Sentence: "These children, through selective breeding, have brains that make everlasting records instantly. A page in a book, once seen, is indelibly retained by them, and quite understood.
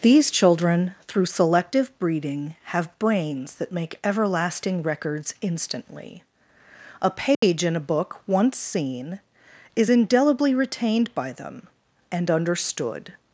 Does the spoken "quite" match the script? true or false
false